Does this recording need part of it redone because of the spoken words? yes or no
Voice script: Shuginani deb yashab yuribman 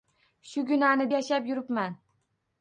yes